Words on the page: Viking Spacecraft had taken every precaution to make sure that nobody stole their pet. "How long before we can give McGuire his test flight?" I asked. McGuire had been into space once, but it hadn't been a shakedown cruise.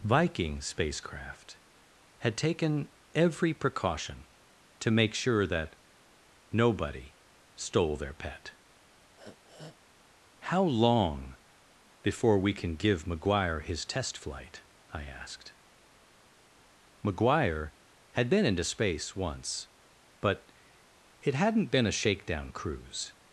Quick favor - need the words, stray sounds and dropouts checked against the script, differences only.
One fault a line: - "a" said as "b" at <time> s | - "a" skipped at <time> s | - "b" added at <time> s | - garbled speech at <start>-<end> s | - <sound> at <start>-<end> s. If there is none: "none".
- sniff at 9.2-9.8 s